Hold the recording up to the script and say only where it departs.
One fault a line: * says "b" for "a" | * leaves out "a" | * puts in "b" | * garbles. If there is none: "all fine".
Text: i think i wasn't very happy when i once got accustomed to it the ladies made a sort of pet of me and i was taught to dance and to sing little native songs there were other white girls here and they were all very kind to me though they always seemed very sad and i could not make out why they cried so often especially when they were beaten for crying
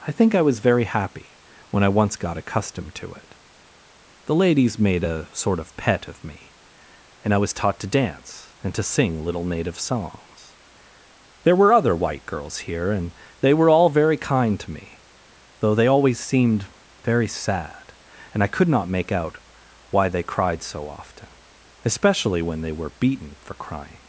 * says "was" for "wasn't"